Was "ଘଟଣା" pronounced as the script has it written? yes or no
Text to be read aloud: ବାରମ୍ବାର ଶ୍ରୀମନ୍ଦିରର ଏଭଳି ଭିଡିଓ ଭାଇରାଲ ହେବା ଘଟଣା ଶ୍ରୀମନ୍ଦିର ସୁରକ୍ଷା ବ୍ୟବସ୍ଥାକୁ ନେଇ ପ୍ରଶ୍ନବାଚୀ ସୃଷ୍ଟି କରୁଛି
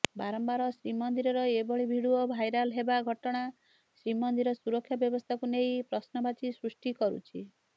yes